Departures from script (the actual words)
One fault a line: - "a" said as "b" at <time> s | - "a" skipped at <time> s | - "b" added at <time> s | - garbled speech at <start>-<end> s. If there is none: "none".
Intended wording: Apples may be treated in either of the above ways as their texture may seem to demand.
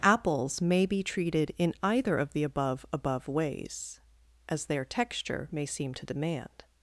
- "above" added at 2.9 s